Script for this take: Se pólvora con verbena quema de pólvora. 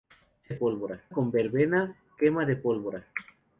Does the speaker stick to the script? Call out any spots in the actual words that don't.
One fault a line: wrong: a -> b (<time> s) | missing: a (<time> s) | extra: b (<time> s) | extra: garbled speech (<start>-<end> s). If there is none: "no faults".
no faults